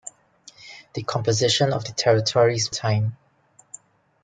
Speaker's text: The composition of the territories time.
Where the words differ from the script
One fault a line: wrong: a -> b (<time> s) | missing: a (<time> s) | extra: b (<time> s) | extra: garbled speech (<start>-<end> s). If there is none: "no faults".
no faults